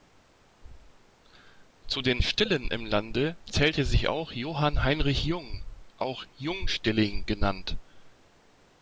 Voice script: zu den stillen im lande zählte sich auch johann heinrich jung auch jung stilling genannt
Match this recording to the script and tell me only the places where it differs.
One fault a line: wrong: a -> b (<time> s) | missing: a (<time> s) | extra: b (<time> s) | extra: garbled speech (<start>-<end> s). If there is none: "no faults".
no faults